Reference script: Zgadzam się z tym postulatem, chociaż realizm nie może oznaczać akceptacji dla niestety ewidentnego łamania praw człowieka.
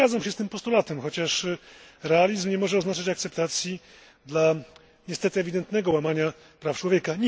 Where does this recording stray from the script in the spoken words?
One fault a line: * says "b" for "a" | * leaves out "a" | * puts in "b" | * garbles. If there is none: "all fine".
all fine